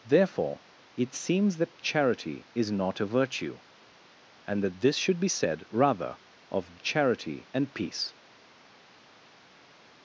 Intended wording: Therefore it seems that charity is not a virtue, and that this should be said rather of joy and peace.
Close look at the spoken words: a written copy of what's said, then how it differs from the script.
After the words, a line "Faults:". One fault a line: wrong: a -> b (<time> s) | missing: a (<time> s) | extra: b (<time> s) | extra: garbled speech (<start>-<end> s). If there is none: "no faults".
Therefore it seems that charity is not a virtue, and that this should be said rather of charity and peace.
Faults:
wrong: joy -> charity (6.8 s)